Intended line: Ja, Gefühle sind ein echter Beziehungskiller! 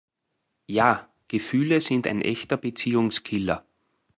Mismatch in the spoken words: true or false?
false